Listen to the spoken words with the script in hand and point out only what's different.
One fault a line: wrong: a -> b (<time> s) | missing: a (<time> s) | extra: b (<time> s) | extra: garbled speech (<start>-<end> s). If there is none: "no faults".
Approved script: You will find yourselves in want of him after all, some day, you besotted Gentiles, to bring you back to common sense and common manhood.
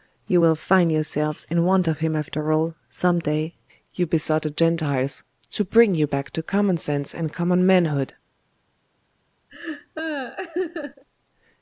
no faults